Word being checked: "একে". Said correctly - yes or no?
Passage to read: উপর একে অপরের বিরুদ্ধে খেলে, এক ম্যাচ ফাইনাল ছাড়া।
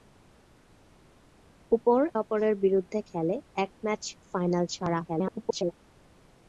no